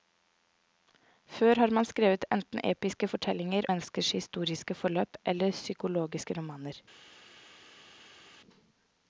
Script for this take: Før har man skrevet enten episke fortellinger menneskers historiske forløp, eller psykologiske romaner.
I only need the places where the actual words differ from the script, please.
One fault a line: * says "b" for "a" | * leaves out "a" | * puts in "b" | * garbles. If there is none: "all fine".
all fine